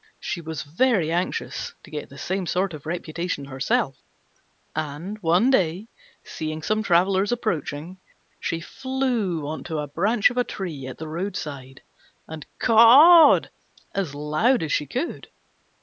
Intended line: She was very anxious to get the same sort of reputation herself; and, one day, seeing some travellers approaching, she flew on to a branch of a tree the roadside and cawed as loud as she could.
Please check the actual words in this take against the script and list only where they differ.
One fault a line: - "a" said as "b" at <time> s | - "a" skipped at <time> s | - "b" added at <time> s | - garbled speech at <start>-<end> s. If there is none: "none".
- "at" added at 10.9 s